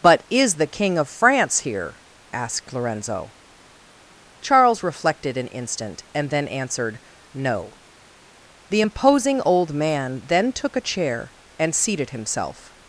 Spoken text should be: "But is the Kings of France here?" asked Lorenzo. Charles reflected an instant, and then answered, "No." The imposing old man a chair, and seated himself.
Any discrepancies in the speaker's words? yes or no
yes